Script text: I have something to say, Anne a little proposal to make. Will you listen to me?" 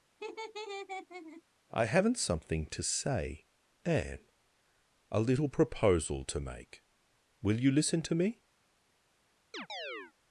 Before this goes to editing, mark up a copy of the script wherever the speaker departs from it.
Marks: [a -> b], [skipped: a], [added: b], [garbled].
I [have -> haven't] something to say, Anne a little proposal to make. Will you listen to me?"